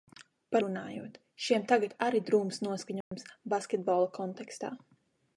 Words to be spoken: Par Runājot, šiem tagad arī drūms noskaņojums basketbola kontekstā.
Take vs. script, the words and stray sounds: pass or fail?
fail